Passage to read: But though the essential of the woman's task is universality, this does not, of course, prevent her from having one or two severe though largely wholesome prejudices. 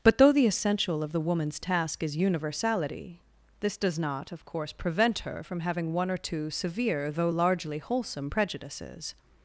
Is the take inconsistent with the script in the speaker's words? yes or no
no